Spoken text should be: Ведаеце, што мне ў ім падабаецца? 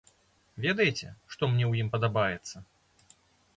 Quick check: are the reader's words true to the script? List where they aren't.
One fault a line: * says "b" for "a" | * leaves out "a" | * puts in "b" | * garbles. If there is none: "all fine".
all fine